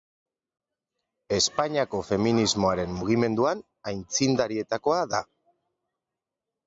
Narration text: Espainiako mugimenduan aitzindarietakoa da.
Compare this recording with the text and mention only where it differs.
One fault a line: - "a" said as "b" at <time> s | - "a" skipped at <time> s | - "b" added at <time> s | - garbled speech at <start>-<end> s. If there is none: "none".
- "feminismoaren" added at 2.1 s